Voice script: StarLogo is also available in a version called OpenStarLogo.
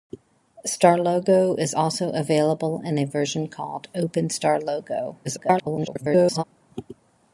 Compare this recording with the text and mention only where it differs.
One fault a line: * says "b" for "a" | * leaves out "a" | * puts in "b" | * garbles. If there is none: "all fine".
* garbles